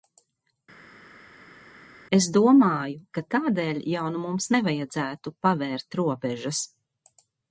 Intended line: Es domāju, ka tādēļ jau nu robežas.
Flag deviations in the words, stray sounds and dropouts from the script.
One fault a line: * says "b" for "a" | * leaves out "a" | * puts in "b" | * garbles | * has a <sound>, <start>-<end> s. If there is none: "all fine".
* puts in "mums nevajadzētu pavērt"